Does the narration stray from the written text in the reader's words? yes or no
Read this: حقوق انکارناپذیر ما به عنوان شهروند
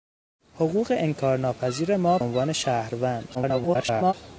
yes